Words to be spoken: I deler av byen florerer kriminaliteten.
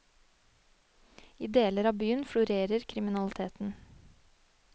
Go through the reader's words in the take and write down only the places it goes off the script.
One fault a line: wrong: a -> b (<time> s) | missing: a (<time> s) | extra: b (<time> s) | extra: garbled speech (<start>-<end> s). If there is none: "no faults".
no faults